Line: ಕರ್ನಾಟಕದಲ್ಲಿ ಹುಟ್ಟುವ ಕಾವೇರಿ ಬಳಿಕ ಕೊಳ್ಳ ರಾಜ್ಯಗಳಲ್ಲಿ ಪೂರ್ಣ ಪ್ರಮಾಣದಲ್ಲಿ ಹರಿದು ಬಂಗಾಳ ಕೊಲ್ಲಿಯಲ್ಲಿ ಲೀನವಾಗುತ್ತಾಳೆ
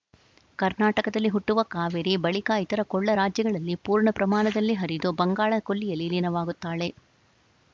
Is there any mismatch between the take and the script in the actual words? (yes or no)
yes